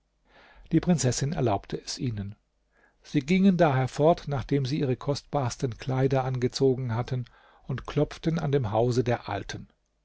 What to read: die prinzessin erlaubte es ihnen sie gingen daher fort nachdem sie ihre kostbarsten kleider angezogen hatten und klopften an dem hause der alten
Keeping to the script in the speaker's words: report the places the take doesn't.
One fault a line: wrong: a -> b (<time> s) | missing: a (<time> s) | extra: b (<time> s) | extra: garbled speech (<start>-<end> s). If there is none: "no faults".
no faults